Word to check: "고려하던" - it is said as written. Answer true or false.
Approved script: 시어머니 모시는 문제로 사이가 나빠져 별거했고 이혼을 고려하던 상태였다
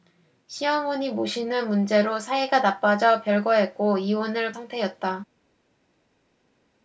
false